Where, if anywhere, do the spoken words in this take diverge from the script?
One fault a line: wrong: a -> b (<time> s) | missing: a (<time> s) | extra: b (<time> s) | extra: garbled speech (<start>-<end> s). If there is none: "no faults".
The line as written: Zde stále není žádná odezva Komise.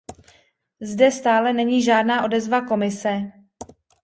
no faults